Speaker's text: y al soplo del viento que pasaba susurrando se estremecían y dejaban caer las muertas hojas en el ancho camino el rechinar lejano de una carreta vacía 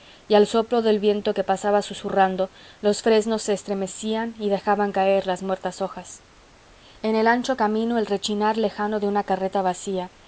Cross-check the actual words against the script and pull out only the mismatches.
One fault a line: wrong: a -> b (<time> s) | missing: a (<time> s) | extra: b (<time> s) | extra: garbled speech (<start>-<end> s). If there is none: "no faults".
extra: los fresnos (2.8 s)